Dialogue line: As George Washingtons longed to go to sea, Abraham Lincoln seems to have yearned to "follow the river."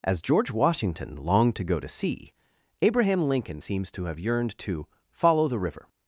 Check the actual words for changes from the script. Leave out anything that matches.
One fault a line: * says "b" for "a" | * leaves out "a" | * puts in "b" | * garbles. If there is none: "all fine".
* says "Washington" for "Washingtons"